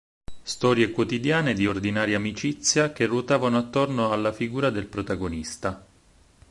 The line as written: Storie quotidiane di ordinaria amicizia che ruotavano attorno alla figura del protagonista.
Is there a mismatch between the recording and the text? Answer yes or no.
no